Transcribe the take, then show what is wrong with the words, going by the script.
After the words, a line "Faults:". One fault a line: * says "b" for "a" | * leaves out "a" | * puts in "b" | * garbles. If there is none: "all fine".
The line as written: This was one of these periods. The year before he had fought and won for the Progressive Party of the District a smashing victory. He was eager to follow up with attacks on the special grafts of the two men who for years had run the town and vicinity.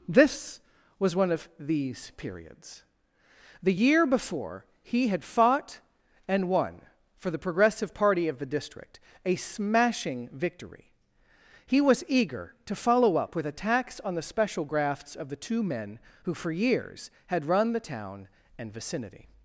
This was one of these periods. The year before he had fought and won for the Progressive Party of the District a smashing victory. He was eager to follow up with attacks on the special grafts of the two men who for years had run the town and vicinity.
Faults:
all fine